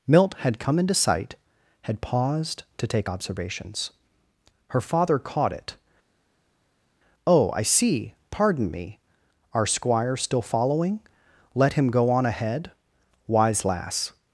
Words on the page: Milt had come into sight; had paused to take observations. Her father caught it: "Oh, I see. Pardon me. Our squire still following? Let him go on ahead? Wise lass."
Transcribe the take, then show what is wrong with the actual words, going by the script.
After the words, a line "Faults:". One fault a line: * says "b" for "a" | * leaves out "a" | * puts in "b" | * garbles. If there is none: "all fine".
Milt had come into sight; had paused to take observations. Her father caught it: "Oh, I see. Pardon me. Our squire still following? Let him go on ahead? Wise lass."
Faults:
all fine